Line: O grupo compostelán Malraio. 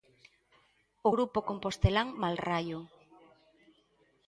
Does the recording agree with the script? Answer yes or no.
yes